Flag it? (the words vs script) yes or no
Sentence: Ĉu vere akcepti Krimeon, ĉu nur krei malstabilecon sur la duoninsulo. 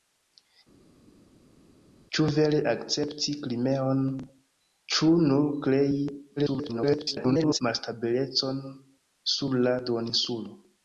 yes